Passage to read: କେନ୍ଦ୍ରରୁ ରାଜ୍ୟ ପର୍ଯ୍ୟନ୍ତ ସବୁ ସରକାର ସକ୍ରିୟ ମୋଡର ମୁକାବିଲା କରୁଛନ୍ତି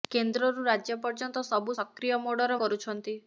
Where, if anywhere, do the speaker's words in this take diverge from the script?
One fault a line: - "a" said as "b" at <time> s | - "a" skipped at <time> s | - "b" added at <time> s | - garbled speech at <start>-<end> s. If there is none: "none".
- "ସରକାର" skipped at 1.8 s
- "ମୁକାବିଲା" skipped at 2.6 s